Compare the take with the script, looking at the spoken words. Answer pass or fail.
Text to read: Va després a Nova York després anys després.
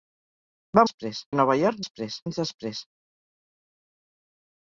pass